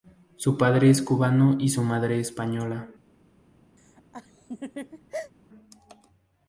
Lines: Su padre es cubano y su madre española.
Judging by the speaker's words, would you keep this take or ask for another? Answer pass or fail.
pass